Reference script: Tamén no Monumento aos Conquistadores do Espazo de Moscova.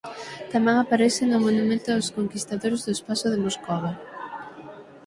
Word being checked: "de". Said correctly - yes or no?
yes